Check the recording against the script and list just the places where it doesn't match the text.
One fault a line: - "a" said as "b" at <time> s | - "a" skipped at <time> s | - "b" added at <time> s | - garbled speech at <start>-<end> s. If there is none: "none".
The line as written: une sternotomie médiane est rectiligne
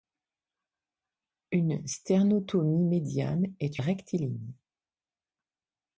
none